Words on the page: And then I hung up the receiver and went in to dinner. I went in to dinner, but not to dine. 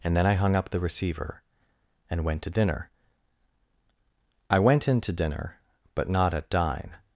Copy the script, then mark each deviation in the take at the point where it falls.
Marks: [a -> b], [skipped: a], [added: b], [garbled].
And then I hung up the receiver and went [skipped: in] to dinner. I went in to dinner, but not [to -> at] dine.